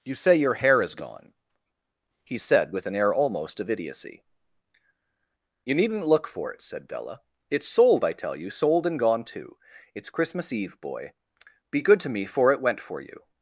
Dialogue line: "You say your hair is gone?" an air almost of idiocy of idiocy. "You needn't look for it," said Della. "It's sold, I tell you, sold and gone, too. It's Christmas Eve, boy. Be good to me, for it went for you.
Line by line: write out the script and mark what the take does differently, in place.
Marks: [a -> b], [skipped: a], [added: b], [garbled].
"You say your hair is gone?" [added: he said with] an air almost of idiocy [skipped: of idiocy.] "You needn't look for it," said Della. "It's sold, I tell you, sold and gone, too. It's Christmas Eve, boy. Be good to me, for it went for you.